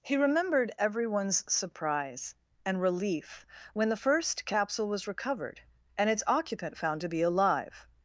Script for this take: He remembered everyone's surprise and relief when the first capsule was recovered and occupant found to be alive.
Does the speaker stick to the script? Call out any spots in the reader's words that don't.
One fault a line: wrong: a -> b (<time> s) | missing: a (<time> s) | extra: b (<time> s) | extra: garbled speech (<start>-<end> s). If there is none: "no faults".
extra: its (6.1 s)